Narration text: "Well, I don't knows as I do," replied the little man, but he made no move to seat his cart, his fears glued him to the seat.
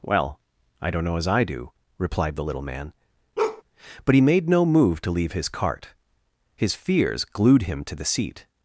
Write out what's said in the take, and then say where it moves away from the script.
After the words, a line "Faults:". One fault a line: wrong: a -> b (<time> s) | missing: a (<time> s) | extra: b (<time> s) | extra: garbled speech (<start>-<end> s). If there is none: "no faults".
"Well, I don't know as I do," replied the little man, but he made no move to leave his cart, his fears glued him to the seat.
Faults:
wrong: knows -> know (1.0 s)
wrong: seat -> leave (5.1 s)